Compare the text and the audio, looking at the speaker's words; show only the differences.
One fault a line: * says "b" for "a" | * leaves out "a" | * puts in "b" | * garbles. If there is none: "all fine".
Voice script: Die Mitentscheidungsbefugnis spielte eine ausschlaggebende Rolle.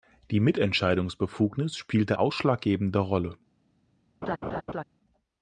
* leaves out "eine"